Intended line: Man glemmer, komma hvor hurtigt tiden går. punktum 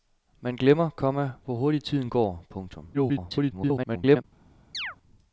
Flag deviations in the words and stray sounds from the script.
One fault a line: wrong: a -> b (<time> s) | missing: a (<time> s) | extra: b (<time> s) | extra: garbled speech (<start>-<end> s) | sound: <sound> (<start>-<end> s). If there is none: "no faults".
extra: garbled speech (2.9-4.2 s)
sound: chirp (4.7-5.0 s)